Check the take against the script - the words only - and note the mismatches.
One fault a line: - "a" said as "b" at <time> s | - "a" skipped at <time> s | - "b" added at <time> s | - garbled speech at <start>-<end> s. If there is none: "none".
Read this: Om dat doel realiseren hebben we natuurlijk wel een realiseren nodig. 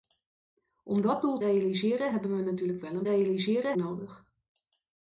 none